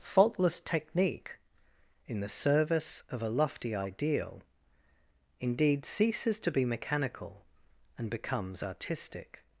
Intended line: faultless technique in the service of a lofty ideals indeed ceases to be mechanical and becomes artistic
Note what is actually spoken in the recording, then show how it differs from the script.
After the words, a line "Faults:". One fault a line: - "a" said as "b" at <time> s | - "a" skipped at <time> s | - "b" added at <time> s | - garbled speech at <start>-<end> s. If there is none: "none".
faultless technique in the service of a lofty ideal indeed ceases to be mechanical and becomes artistic
Faults:
- "ideals" said as "ideal" at 3.7 s